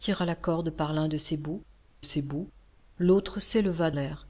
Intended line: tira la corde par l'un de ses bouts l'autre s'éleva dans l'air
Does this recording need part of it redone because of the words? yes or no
yes